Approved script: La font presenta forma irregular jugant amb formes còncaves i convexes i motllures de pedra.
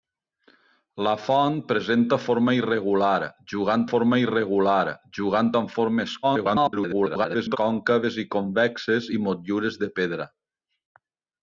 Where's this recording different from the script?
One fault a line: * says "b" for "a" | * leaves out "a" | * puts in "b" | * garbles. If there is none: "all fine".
* puts in "forma irregular jugant"
* garbles